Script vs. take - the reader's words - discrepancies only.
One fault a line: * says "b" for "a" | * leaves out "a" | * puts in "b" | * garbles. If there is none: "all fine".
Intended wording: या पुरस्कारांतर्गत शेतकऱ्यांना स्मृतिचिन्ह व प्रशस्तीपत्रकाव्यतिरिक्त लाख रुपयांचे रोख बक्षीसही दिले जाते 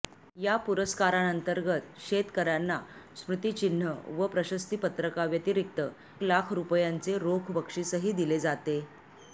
all fine